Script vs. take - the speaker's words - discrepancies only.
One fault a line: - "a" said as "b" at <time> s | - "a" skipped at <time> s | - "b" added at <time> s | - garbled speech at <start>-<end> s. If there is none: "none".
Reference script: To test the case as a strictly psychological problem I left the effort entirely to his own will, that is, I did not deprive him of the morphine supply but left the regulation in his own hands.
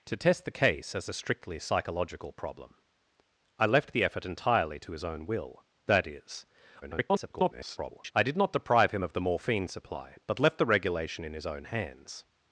- garbled speech at 6.8-8.1 s